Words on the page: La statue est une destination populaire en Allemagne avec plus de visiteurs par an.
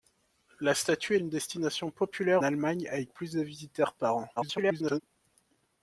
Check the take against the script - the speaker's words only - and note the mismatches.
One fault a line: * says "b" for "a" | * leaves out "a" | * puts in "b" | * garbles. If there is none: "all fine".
* leaves out "est"
* leaves out "en"
* garbles